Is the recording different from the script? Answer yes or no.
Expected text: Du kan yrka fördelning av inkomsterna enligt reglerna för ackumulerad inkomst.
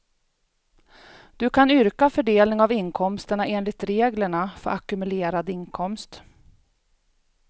no